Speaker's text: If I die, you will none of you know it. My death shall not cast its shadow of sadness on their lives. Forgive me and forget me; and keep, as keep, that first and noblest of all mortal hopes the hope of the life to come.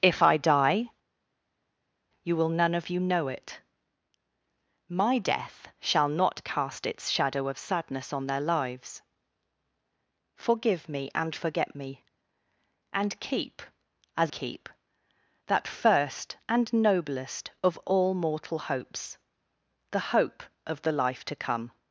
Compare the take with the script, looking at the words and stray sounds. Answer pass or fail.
pass